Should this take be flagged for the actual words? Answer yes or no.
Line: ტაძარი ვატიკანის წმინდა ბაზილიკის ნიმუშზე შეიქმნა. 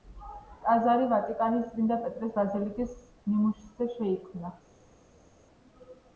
yes